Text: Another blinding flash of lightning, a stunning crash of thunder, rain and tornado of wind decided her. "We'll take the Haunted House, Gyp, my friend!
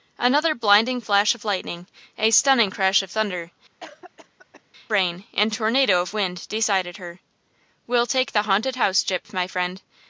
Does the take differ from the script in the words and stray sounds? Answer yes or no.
yes